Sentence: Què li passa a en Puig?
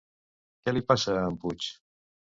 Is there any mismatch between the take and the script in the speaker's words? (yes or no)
no